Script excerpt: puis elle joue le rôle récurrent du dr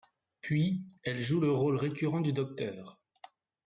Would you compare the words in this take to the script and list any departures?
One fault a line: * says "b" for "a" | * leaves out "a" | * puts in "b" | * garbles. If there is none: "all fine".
all fine